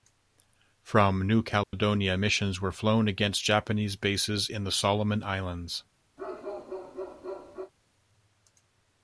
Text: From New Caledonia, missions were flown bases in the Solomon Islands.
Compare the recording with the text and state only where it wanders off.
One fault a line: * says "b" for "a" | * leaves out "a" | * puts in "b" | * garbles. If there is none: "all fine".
* puts in "against Japanese"